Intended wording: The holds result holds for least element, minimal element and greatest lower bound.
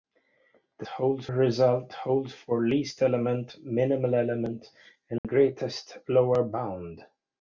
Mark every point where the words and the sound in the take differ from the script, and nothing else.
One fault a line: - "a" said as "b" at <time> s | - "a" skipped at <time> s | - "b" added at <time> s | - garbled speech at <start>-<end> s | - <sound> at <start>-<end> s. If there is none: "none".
- dropout at 5.2-5.2 s